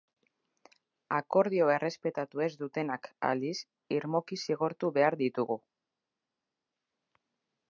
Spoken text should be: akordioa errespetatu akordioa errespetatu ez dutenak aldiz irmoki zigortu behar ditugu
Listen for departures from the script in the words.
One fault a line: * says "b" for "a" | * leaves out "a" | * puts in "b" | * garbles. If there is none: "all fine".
* leaves out "akordioa errespetatu"